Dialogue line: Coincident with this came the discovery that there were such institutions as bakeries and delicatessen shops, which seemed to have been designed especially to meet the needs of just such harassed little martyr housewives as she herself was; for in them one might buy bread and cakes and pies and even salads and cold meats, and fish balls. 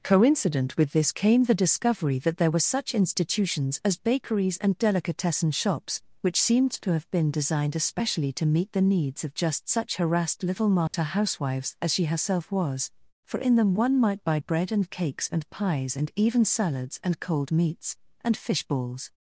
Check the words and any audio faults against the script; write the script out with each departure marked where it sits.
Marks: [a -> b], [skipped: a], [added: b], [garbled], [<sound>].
Coincident with this came the discovery that there were such institutions as bakeries and delicatessen shops, which seemed to have been designed especially to meet the needs of just such harassed little martyr [dropout] housewives as she herself was; for in them one might buy bread and cakes and pies and even salads and cold meats, and fish balls.